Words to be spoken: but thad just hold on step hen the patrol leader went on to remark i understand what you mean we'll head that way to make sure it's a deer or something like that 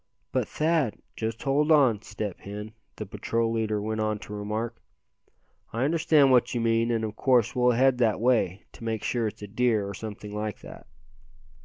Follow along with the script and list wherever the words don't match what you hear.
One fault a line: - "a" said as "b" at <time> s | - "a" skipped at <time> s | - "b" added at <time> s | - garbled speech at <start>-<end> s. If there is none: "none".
- "and of course" added at 6.9 s